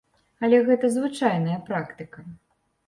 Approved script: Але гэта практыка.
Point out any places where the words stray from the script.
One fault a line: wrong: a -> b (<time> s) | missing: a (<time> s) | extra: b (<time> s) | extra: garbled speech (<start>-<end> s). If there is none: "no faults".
extra: звычайная (0.9 s)